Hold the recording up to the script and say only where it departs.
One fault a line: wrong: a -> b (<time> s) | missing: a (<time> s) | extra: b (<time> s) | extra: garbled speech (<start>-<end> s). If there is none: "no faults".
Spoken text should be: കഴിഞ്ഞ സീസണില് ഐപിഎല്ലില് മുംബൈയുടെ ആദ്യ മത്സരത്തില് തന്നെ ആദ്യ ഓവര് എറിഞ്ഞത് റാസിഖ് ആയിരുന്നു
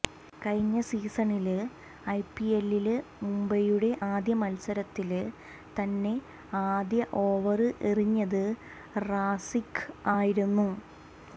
no faults